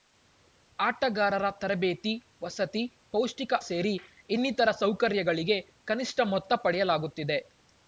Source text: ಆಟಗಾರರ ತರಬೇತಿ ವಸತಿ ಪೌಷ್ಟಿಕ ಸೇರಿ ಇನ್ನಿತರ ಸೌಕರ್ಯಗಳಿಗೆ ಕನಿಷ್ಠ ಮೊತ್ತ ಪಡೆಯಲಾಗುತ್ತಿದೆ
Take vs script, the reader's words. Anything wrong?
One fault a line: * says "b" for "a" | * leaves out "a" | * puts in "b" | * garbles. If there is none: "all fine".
all fine